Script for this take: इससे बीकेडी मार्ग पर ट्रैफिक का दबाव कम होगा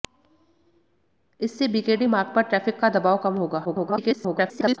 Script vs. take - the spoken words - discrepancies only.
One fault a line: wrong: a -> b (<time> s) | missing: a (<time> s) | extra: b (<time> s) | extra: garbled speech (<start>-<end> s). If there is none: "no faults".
extra: garbled speech (3.6-4.8 s)